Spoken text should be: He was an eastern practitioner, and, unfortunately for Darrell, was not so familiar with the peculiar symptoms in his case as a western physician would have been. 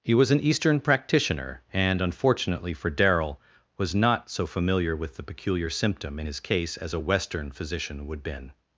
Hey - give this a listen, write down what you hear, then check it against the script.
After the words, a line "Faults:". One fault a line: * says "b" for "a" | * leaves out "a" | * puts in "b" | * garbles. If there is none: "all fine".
He was an eastern practitioner, and, unfortunately for Darrell, was not so familiar with the peculiar symptom in his case as a western physician would been.
Faults:
* says "symptom" for "symptoms"
* leaves out "have"